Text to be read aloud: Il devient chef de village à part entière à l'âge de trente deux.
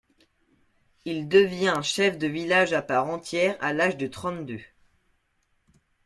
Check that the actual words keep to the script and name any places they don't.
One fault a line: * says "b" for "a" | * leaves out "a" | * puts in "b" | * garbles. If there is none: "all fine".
all fine